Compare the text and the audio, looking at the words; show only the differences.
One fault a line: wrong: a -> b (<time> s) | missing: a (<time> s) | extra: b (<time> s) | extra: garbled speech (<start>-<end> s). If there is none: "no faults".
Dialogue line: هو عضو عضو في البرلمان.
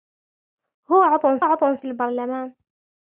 no faults